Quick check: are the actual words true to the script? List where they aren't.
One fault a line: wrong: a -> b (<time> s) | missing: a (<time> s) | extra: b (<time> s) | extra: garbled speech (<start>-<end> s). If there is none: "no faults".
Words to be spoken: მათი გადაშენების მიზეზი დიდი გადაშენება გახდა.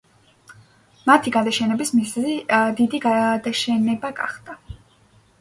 no faults